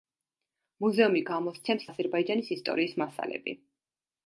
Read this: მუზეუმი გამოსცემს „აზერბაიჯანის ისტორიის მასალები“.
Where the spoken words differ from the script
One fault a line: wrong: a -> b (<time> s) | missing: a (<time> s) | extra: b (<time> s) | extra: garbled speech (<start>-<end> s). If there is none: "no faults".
no faults